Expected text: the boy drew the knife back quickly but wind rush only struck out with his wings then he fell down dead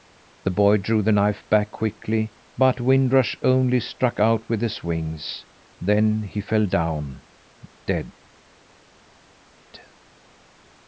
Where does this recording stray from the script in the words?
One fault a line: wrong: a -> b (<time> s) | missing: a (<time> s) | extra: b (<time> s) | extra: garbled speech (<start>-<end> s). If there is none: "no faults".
no faults